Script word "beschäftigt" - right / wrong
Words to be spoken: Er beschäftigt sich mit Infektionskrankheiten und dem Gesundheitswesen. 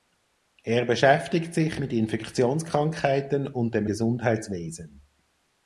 right